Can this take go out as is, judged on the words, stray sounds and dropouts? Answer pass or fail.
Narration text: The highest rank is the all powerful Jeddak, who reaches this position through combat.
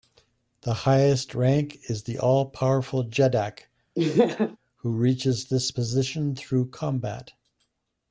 fail